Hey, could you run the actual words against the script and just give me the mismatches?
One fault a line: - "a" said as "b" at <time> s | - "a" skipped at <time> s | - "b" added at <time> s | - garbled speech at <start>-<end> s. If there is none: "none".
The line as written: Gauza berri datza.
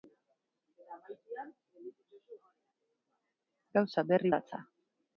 none